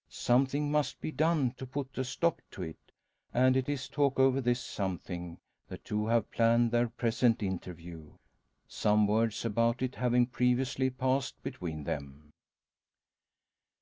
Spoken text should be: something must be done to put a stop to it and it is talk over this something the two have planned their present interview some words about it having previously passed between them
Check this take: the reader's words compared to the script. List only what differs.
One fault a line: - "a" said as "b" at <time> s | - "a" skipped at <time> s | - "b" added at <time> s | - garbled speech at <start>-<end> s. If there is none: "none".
none